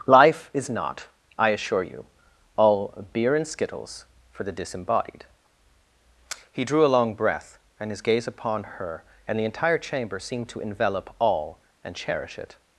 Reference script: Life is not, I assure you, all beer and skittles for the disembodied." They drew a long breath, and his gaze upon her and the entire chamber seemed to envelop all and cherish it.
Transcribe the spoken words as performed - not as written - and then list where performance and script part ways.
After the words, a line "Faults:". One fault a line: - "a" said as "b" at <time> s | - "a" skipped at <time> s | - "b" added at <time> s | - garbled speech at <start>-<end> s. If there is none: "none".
Life is not, I assure you, all beer and skittles for the disembodied." He drew a long breath, and his gaze upon her and the entire chamber seemed to envelop all and cherish it.
Faults:
- "They" said as "He" at 6.5 s